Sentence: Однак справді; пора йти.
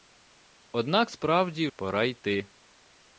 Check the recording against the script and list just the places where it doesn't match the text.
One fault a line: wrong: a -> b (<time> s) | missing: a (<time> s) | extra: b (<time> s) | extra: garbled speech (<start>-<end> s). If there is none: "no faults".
no faults